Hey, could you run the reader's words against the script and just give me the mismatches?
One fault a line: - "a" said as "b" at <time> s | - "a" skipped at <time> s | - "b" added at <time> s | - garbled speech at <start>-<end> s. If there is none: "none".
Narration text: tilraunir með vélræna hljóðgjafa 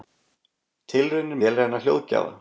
- "með" skipped at 1.4 s